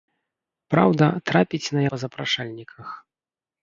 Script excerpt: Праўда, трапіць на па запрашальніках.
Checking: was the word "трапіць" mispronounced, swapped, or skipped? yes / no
no